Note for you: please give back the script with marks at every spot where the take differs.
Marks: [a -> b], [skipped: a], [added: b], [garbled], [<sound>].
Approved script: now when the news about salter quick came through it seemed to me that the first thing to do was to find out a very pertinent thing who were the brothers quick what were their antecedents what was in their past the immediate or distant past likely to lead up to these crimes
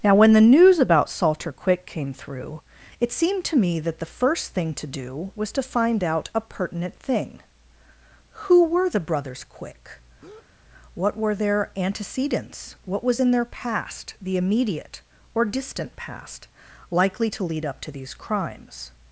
now when the news about salter quick came through it seemed to me that the first thing to do was to find out a [skipped: very] pertinent thing who were the brothers quick [breath] what were their antecedents what was in their past the immediate or distant past likely to lead up to these crimes